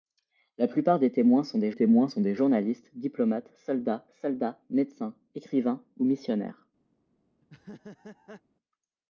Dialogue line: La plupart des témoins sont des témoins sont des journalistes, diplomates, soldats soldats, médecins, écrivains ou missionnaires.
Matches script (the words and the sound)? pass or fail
fail